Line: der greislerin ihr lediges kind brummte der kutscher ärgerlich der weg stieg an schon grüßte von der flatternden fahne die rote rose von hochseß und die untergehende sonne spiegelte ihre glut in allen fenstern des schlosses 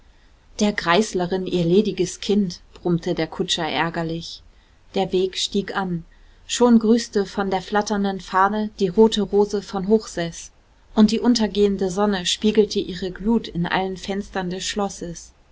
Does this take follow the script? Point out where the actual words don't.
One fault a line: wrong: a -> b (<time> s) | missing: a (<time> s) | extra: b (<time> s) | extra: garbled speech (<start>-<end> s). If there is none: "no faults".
no faults